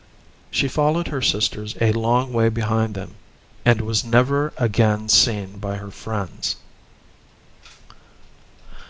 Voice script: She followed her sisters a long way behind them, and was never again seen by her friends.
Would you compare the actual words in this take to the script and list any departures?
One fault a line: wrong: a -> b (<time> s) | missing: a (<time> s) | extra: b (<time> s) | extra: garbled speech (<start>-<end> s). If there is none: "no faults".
no faults